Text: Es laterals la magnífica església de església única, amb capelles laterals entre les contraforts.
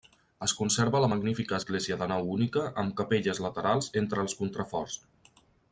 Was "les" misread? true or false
true